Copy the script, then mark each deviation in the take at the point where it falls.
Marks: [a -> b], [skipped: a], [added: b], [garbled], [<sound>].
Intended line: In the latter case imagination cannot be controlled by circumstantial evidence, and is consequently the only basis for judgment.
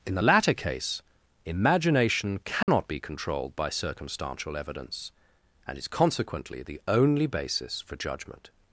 In the latter case imagination cannot [dropout] be controlled by circumstantial evidence, and is consequently the only basis for judgment.